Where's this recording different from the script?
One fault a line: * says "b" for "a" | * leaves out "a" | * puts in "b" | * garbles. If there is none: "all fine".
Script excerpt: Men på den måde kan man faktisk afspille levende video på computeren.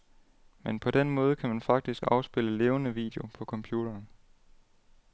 all fine